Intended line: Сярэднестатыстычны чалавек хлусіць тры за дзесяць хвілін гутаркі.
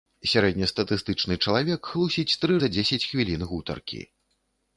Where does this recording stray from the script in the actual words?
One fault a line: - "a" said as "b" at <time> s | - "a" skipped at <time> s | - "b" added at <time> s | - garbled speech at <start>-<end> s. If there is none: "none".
none